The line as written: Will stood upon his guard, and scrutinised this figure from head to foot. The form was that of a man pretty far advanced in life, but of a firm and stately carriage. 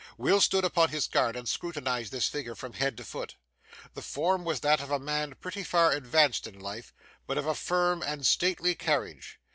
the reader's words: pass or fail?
pass